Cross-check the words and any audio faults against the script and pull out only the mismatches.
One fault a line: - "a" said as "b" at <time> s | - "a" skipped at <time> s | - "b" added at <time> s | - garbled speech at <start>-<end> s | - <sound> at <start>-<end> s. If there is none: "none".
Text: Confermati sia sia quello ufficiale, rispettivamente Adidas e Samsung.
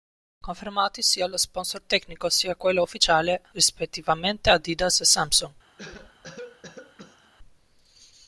- "lo sponsor tecnico" added at 1.3 s
- cough at 5.8-7.3 s